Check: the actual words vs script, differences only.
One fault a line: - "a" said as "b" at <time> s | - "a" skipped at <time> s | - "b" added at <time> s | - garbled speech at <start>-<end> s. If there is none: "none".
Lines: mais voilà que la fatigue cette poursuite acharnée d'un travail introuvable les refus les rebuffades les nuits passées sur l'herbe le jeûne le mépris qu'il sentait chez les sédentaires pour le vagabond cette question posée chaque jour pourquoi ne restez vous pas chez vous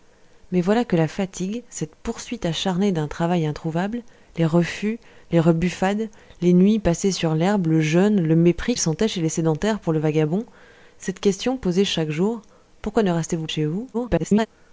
- "qu'il" skipped at 8.8 s
- "pas" skipped at 13.5 s
- garbled speech at 13.9-14.5 s